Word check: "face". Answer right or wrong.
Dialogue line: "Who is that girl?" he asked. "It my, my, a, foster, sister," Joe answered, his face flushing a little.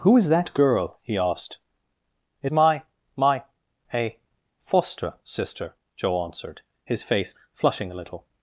right